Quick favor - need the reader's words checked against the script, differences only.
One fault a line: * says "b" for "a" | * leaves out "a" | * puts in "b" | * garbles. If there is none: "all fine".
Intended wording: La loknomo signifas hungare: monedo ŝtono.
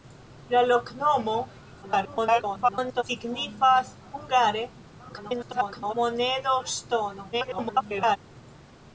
* garbles
* garbles
* garbles